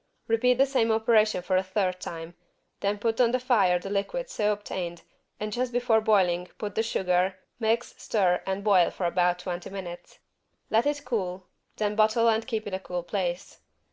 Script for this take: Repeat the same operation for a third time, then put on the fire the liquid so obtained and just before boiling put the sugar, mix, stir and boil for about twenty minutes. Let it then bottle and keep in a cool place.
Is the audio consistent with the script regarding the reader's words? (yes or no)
no